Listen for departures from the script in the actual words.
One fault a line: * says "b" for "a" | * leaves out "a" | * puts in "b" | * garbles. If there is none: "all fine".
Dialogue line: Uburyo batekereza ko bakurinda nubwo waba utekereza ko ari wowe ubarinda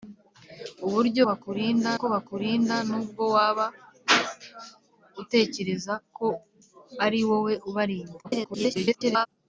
* says "bakurinda" for "batekereza"
* garbles